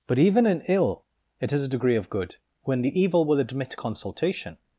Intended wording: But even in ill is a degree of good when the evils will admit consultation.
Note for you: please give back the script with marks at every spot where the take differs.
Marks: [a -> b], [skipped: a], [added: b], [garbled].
But even in ill [added: it] is a degree of good when the [evils -> evil] will admit consultation.